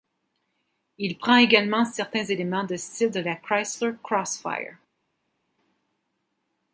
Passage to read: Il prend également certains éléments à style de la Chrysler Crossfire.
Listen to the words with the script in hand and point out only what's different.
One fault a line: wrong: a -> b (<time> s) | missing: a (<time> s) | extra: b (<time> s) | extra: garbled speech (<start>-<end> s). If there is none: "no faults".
wrong: à -> de (2.6 s)